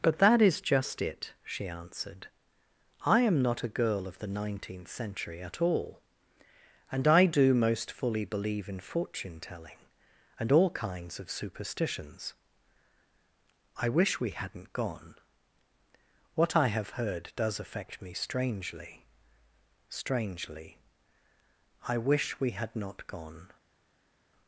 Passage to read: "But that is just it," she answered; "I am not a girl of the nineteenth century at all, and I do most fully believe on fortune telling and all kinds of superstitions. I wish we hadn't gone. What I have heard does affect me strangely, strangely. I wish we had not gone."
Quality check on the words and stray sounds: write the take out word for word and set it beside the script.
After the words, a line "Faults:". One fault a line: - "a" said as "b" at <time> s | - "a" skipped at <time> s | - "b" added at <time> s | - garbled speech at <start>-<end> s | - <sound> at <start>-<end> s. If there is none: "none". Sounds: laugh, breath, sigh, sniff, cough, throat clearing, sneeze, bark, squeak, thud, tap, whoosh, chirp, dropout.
"But that is just it," she answered; "I am not a girl of the nineteenth century at all, and I do most fully believe in fortune telling and all kinds of superstitions. I wish we hadn't gone. What I have heard does affect me strangely, strangely. I wish we had not gone."
Faults:
- "on" said as "in" at 8.7 s